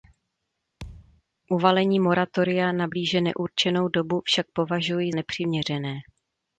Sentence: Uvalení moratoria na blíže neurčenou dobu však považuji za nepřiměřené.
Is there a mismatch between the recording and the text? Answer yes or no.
yes